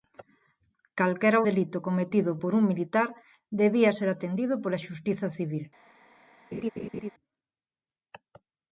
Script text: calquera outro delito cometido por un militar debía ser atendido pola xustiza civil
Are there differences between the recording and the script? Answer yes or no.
yes